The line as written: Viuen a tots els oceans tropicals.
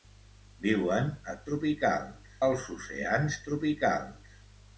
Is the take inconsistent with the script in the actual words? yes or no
yes